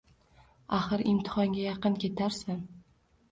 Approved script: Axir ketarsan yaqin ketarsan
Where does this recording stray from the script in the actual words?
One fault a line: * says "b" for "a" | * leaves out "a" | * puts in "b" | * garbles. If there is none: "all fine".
* says "imtihonga" for "ketarsan"